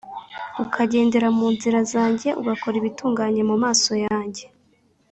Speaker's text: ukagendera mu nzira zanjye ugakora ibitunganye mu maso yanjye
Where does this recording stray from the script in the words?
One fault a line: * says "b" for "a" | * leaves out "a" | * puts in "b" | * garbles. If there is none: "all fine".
all fine